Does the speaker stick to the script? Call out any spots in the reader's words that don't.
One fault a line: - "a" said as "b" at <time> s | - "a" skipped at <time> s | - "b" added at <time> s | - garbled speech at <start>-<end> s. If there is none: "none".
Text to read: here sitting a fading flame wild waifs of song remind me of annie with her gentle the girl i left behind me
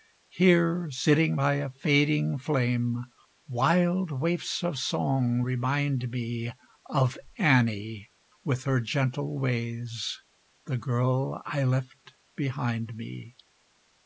- "by" added at 1.3 s
- "ways" added at 9.4 s